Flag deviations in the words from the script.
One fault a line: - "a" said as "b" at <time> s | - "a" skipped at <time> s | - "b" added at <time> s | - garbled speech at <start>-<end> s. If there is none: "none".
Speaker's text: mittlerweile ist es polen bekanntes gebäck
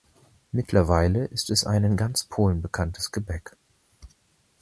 - "ein in ganz" added at 1.7 s